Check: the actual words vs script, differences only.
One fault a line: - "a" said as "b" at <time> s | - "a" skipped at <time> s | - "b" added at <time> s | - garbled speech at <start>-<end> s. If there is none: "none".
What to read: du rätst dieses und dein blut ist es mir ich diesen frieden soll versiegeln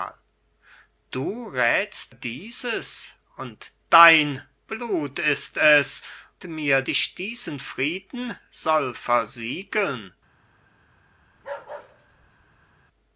none